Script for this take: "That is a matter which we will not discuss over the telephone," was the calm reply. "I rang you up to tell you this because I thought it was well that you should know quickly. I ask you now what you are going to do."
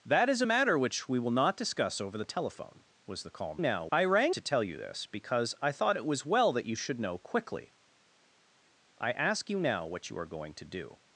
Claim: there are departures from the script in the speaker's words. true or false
true